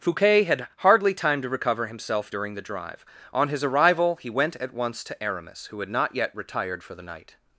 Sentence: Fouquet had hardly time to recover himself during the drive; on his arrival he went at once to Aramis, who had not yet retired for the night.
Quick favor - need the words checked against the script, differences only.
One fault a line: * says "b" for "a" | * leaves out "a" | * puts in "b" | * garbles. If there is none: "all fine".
all fine